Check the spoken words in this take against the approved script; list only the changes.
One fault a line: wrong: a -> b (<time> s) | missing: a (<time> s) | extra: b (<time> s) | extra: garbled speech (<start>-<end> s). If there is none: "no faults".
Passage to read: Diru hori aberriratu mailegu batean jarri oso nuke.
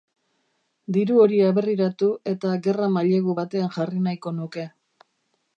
extra: eta gerra (2.3 s)
wrong: oso -> nahiko (4.1 s)